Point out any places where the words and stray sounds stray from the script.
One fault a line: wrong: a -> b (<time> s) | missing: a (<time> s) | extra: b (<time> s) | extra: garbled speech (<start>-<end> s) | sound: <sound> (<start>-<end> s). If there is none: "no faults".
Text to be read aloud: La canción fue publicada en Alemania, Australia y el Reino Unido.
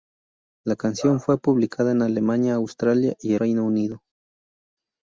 missing: el (3.4 s)